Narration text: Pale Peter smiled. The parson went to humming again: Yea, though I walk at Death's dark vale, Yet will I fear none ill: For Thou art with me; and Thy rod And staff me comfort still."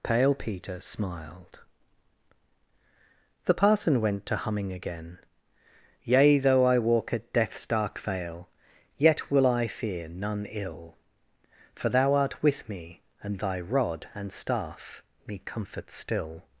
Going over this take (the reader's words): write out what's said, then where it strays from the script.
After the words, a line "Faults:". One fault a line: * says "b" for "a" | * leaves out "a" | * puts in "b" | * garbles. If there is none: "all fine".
Pale Peter smiled. The parson went to humming again: Yea, though I walk at Death's dark vale, Yet will I fear none ill: For Thou art with me; and Thy rod And staff me comfort still."
Faults:
all fine